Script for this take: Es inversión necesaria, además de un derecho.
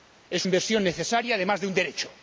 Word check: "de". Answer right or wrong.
right